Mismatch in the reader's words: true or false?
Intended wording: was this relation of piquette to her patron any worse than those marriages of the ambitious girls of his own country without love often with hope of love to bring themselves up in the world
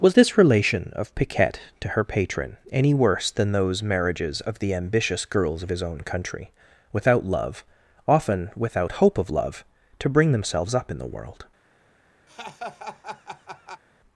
true